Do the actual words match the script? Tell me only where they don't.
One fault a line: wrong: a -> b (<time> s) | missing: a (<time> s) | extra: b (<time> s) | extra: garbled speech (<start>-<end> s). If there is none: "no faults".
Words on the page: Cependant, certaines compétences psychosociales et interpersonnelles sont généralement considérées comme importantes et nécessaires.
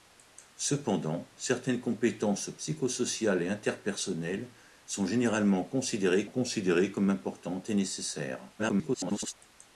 extra: considérées (6.3 s)
extra: garbled speech (8.6-9.3 s)